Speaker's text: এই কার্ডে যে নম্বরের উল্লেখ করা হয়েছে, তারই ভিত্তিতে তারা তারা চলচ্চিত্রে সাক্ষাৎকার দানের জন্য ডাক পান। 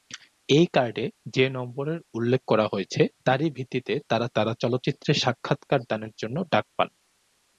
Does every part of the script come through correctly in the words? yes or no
yes